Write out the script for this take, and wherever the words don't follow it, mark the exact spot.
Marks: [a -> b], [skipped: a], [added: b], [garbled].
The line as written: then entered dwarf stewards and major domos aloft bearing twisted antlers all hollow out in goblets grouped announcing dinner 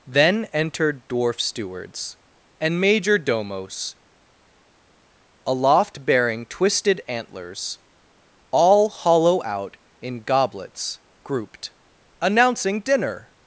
then entered dwarf stewards and major domos aloft bearing twisted antlers all hollow out in goblets grouped announcing dinner